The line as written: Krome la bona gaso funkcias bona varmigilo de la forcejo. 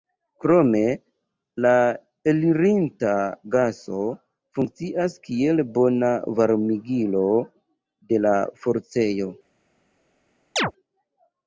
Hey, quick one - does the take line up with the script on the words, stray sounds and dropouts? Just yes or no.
no